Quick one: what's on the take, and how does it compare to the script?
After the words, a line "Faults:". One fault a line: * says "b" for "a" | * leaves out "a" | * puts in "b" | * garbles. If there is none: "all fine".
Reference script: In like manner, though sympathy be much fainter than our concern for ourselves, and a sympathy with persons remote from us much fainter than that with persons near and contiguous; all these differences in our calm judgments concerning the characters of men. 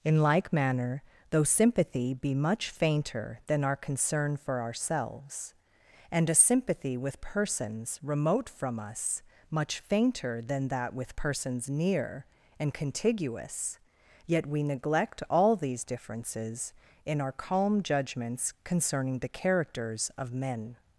In like manner, though sympathy be much fainter than our concern for ourselves, and a sympathy with persons remote from us much fainter than that with persons near and contiguous; yet we neglect all these differences in our calm judgments concerning the characters of men.
Faults:
* puts in "yet we neglect"